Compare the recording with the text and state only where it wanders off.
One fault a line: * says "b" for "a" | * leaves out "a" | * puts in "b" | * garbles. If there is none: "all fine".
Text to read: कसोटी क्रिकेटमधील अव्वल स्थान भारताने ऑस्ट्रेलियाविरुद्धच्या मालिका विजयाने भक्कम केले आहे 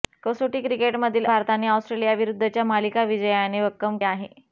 * leaves out "अव्वल स्थान"
* leaves out "केले"